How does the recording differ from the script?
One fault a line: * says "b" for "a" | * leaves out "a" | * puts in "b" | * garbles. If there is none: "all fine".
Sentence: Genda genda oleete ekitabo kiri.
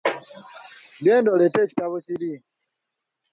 * leaves out "genda"